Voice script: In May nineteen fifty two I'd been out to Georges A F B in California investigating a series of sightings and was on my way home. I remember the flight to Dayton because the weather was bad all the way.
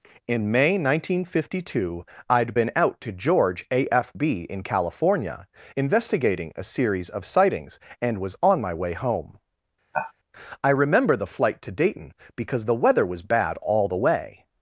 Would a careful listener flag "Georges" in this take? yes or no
yes